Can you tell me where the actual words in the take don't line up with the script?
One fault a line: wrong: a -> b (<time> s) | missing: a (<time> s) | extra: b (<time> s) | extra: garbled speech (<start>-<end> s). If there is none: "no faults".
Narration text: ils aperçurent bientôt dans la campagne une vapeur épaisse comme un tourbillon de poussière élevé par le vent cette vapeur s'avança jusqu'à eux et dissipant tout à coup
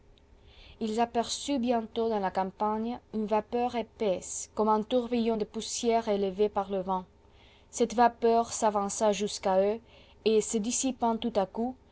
extra: se (10.4 s)